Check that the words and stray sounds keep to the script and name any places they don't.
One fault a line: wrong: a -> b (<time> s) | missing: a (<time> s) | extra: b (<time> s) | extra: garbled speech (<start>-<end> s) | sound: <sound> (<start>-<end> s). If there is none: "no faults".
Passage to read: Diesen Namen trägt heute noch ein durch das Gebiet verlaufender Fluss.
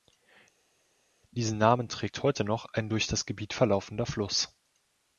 no faults